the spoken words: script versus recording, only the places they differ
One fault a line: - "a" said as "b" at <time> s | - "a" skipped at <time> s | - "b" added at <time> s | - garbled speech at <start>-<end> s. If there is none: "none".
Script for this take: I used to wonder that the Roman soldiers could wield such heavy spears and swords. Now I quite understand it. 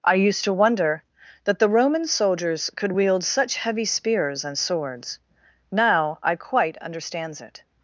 - "understand" said as "understands" at 6.8 s